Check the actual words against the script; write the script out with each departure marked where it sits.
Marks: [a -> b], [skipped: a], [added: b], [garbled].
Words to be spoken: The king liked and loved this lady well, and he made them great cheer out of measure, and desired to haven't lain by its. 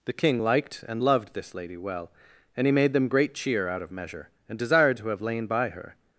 The king liked and loved this lady well, and he made them great cheer out of measure, and desired to [haven't -> have] lain by [its. -> her]